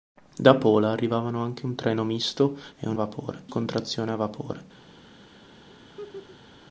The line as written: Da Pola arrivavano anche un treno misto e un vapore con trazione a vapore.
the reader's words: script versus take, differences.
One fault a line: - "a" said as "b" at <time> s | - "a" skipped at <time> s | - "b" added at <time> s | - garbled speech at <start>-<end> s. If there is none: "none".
none